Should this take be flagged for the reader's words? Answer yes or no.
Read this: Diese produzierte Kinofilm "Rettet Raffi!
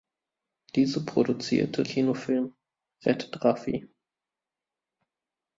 no